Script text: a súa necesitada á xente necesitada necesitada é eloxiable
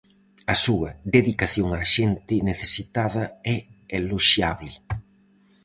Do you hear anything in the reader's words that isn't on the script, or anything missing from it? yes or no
yes